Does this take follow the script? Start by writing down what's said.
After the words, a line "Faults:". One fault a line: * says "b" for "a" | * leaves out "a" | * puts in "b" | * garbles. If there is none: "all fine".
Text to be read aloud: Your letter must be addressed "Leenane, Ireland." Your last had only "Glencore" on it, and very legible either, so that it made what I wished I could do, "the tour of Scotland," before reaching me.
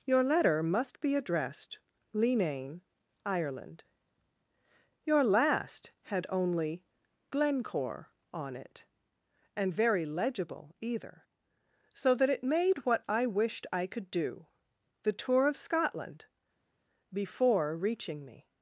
Your letter must be addressed "Leenane, Ireland." Your last had only "Glencore" on it, and very legible either, so that it made what I wished I could do, "the tour of Scotland," before reaching me.
Faults:
all fine